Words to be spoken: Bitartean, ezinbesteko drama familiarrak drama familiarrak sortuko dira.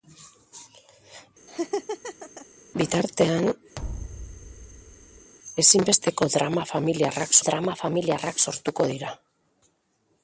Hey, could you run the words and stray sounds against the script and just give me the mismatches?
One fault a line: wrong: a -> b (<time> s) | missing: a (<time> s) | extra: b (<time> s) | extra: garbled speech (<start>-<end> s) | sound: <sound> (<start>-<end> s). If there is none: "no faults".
sound: laugh (1.5-2.5 s)
sound: thud (3.8-5.3 s)